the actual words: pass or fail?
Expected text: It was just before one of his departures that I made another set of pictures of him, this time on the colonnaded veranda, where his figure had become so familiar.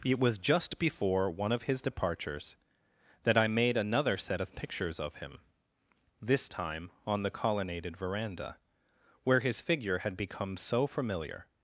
pass